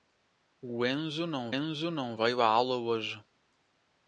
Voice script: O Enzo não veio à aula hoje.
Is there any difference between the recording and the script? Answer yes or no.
yes